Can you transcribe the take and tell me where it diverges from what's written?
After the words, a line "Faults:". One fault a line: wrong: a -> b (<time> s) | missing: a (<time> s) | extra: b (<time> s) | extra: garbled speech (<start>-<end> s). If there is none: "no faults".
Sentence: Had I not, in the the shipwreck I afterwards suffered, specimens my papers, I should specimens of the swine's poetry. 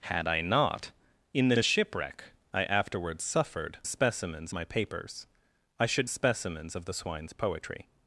Had I not, in the the shipwreck I afterwards suffered, specimens my papers, I should specimens of the swine's poetry.
Faults:
no faults